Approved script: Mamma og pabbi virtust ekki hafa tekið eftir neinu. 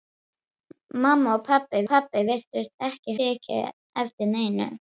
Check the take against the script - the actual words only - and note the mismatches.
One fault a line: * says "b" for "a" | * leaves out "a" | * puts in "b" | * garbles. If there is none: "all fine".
* puts in "pabbi"
* leaves out "hafa"